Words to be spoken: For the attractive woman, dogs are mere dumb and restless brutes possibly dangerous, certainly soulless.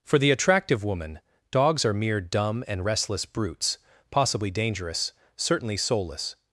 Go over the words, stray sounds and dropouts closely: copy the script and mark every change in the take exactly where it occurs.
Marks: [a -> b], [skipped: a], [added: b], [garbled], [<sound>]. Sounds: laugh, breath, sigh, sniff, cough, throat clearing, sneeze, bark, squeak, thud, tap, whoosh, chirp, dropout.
For the attractive woman, dogs are mere dumb and restless brutes possibly dangerous, certainly soulless.